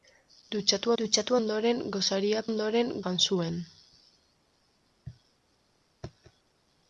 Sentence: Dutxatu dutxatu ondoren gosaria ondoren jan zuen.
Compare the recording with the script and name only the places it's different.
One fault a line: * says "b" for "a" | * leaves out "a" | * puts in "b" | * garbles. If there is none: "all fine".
all fine